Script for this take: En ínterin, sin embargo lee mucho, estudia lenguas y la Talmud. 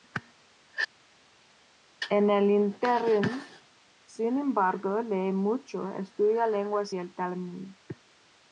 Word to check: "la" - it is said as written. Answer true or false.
false